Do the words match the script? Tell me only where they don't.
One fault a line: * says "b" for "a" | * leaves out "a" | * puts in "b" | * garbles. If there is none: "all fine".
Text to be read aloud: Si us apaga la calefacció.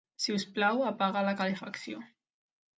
* puts in "plau"